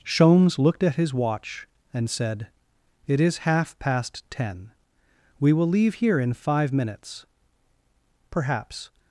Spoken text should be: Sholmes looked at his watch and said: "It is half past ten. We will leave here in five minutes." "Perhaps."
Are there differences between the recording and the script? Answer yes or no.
no